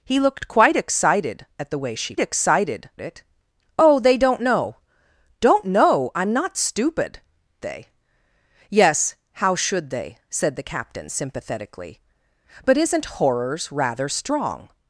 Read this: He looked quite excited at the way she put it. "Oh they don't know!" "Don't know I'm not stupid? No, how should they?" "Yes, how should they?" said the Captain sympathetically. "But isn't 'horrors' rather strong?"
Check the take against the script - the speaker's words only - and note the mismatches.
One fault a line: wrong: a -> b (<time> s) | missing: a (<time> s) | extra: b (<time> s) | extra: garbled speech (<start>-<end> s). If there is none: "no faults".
wrong: put -> excited (2.2 s)
missing: No how should (7.2 s)